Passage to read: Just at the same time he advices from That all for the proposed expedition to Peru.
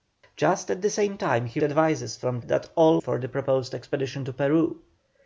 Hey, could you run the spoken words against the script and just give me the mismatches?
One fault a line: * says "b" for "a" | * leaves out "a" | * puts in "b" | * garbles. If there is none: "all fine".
all fine